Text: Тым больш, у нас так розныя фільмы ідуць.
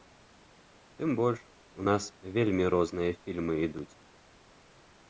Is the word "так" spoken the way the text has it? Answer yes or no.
no